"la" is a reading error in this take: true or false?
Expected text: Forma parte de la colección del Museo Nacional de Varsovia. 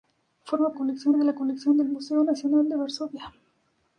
false